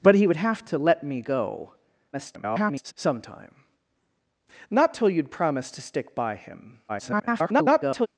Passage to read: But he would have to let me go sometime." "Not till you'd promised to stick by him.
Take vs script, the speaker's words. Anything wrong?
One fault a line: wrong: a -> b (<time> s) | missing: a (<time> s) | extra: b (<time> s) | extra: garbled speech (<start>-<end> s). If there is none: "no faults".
extra: garbled speech (2.1-2.9 s)
extra: garbled speech (6.9-8.1 s)